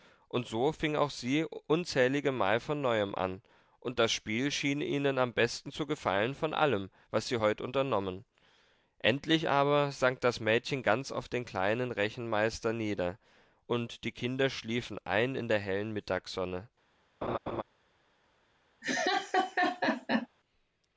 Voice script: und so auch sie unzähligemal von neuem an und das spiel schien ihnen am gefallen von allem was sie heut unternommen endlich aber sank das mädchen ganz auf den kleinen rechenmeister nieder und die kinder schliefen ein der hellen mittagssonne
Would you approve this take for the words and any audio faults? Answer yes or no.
no